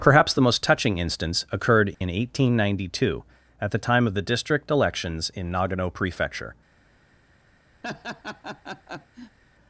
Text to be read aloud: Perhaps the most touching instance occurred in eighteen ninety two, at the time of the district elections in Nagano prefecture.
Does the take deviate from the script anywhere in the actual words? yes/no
no